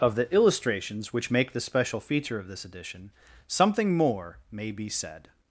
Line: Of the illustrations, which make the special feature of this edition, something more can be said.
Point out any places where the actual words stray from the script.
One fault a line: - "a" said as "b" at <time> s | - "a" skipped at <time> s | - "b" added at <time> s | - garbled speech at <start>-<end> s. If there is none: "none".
- "can" said as "may" at 4.5 s